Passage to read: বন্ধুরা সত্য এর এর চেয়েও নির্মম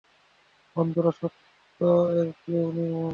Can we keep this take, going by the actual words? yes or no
no